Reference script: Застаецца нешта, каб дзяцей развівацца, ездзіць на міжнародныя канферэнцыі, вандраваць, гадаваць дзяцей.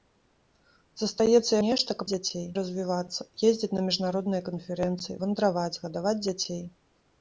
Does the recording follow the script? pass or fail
pass